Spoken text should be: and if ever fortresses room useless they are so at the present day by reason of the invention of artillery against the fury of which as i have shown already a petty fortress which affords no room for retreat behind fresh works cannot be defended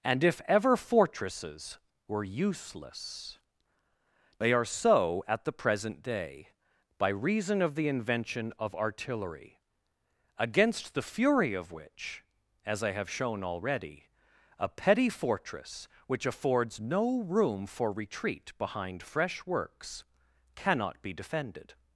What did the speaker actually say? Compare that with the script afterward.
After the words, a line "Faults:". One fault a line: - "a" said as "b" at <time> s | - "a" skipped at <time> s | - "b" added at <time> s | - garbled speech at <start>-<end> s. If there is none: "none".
and if ever fortresses were useless they are so at the present day by reason of the invention of artillery against the fury of which as i have shown already a petty fortress which affords no room for retreat behind fresh works cannot be defended
Faults:
- "room" said as "were" at 2.1 s